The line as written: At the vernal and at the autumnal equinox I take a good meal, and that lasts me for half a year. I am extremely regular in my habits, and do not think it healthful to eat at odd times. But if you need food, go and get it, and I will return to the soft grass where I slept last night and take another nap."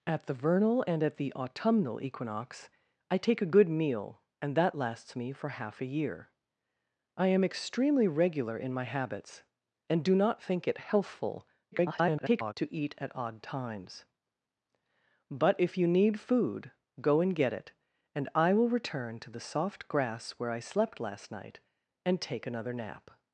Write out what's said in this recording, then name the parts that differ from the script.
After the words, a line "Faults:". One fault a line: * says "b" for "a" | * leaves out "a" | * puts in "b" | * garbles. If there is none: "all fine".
At the vernal and at the autumnal equinox I take a good meal, and that lasts me for half a year. I am extremely regular in my habits, and do not think it healthful [garbled] to eat at odd times. But if you need food, go and get it, and I will return to the soft grass where I slept last night and take another nap."
Faults:
* garbles